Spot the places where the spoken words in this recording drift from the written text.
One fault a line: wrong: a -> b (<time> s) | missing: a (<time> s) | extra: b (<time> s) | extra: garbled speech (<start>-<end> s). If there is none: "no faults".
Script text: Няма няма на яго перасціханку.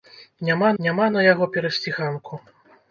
no faults